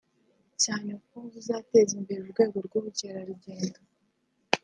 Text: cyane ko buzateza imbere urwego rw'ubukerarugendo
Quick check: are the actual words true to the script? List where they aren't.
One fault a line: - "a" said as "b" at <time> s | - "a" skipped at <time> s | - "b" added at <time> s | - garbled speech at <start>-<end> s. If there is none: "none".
none